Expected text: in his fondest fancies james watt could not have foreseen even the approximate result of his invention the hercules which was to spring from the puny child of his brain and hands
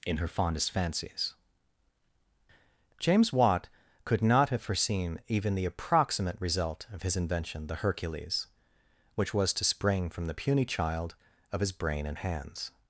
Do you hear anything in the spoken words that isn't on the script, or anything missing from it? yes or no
yes